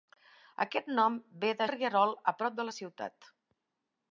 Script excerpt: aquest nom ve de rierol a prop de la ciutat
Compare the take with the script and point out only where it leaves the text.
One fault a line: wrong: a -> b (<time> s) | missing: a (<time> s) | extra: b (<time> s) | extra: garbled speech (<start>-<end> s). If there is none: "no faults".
no faults